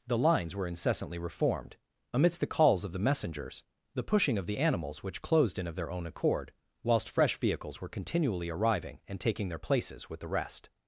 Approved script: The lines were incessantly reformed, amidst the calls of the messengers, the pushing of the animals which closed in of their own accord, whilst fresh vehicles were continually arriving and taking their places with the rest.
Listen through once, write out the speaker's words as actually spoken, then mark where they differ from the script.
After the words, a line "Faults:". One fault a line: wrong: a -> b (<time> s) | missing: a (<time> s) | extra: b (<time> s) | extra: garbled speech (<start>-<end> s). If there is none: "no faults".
The lines were incessantly reformed, amidst the calls of the messengers, the pushing of the animals which closed in of their own accord, whilst fresh vehicles were continually arriving and taking their places with the rest.
Faults:
no faults